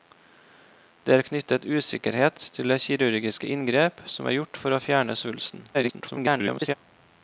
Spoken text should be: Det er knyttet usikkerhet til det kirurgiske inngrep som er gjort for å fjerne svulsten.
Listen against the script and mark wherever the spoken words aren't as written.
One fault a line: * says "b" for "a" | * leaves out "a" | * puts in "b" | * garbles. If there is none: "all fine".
* garbles